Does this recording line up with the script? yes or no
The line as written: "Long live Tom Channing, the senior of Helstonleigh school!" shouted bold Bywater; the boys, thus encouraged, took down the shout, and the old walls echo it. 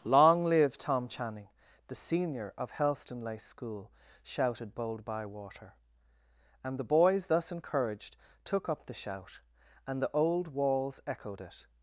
no